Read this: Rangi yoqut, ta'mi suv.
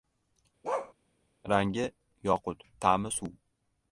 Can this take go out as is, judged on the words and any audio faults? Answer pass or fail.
fail